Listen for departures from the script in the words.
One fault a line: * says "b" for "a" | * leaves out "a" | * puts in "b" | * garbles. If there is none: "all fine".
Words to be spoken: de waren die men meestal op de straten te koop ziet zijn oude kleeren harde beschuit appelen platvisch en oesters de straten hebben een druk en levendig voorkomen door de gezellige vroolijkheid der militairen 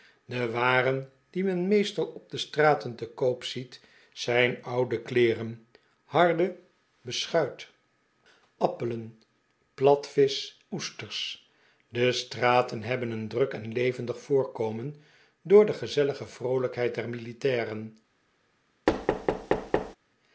* leaves out "en"